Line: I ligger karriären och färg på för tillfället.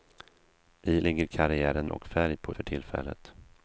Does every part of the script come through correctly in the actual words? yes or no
yes